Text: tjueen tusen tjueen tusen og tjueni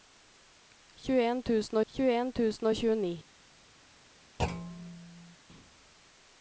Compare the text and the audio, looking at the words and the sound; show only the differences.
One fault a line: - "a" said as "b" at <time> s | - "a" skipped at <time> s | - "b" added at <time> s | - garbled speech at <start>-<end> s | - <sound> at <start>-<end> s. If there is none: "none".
- thud at 4.4-5.4 s